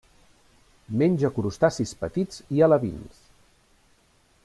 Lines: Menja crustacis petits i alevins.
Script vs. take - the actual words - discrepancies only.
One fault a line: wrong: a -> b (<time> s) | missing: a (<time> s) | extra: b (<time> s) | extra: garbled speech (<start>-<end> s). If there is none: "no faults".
no faults